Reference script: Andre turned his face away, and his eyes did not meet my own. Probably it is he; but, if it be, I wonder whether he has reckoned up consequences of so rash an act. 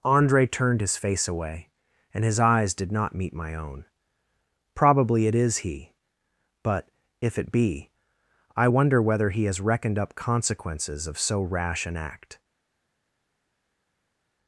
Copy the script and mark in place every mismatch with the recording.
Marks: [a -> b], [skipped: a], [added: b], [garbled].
Andre turned his face away, and his eyes did not meet my own. Probably it is he; but, if it be, I wonder whether he has reckoned up consequences of so rash an act.